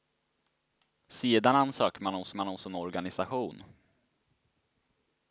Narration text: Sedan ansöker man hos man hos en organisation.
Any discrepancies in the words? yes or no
no